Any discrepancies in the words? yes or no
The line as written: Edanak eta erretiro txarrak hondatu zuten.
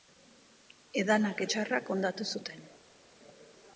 yes